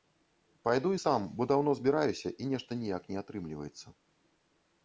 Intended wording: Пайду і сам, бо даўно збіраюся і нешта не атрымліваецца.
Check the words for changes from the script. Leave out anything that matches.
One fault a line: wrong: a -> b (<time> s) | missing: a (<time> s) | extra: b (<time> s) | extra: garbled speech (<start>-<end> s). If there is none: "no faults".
extra: ніяк (2.8 s)